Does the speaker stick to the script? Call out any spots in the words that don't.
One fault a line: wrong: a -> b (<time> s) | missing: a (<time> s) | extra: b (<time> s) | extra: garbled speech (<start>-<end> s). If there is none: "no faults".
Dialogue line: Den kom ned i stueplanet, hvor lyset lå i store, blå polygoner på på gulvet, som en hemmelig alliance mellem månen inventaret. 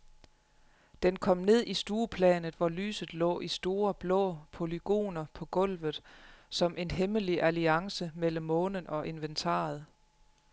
missing: på (5.5 s)
extra: og (8.9 s)